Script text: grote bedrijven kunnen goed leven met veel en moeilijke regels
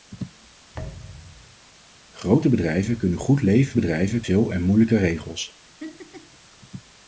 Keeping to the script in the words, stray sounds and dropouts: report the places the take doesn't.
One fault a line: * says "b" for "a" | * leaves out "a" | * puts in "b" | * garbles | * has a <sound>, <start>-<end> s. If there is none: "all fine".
* has a thud, 0.7-1.6 s
* says "bedrijven" for "met"
* has a laugh, 5.8-6.4 s